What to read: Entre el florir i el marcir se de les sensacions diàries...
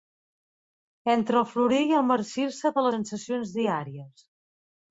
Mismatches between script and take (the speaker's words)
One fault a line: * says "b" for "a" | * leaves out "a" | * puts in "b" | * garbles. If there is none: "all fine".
* leaves out "les"